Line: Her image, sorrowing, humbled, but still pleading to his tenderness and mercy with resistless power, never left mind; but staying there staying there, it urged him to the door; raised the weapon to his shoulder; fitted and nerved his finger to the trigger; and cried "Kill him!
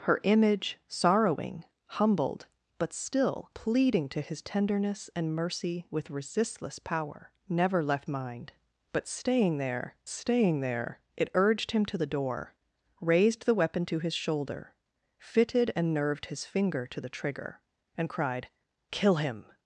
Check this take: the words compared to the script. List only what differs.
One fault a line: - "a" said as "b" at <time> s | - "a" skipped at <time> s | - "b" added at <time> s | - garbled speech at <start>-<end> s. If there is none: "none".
none